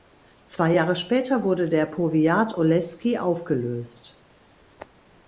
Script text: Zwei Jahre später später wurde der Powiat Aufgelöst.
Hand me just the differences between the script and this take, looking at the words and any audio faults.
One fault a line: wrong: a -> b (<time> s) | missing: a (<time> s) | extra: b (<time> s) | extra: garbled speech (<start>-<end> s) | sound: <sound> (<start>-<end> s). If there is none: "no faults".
missing: später (1.4 s)
extra: Oleski (2.5 s)